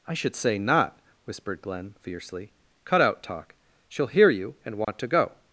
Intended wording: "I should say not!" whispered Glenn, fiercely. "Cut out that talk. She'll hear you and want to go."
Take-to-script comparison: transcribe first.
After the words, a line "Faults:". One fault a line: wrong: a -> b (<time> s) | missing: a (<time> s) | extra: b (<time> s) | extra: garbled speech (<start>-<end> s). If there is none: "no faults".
"I should say not!" whispered Glenn, fiercely. "Cut out talk. She'll hear you and want to go."
Faults:
missing: that (3.2 s)